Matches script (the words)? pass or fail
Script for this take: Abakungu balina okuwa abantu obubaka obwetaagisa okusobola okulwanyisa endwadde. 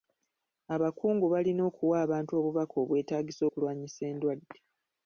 fail